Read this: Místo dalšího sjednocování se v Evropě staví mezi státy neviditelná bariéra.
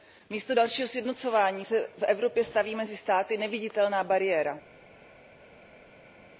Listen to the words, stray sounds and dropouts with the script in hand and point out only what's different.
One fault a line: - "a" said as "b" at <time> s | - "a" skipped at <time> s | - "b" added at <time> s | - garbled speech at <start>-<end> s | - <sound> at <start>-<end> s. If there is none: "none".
none